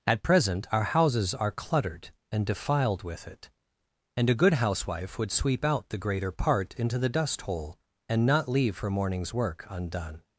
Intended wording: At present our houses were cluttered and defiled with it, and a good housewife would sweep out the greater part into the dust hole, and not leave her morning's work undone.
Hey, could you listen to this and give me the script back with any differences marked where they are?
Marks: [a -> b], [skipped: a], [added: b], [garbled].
At present our houses [were -> are] cluttered and defiled with it, and a good housewife would sweep out the greater part into the dust hole, and not leave her morning's work undone.